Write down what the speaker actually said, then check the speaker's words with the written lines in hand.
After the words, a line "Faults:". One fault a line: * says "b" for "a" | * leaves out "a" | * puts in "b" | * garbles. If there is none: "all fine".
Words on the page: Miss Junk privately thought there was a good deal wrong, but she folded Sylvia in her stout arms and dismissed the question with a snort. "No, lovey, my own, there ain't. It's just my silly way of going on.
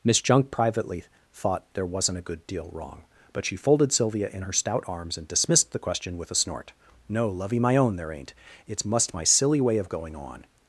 Miss Junk privately thought there wasn't a good deal wrong, but she folded Sylvia in her stout arms and dismissed the question with a snort. "No, lovey, my own, there ain't. It's must my silly way of going on.
Faults:
* says "wasn't" for "was"
* says "must" for "just"